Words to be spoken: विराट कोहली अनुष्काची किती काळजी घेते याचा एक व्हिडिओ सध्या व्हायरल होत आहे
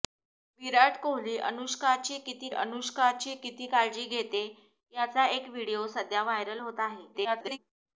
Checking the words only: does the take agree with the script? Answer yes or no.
no